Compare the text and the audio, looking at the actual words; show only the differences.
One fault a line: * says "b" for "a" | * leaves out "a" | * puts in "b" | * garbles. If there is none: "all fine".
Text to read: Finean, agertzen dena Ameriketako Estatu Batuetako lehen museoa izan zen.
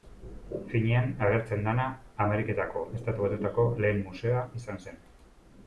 all fine